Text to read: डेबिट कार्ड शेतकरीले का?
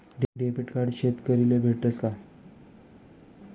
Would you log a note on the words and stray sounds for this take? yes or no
yes